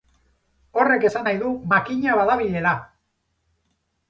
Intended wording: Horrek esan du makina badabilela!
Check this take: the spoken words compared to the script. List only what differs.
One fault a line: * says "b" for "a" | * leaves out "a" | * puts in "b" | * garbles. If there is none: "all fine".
* puts in "nahi"